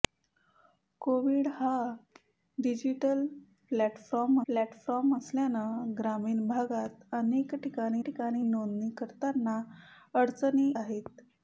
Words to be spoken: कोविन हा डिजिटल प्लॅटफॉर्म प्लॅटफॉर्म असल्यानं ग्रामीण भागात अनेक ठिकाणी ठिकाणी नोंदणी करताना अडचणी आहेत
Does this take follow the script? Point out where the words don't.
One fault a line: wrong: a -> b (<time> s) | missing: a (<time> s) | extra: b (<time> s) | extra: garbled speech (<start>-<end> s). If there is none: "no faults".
no faults